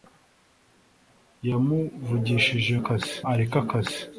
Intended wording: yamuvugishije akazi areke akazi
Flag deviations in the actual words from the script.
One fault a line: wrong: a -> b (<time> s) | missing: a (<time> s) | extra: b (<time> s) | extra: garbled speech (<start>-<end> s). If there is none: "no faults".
no faults